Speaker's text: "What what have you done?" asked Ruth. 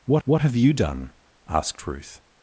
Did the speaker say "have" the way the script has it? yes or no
yes